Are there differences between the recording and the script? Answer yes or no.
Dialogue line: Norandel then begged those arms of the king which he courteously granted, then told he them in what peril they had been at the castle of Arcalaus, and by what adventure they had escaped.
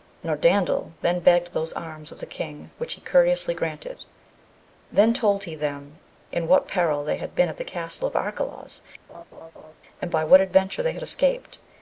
no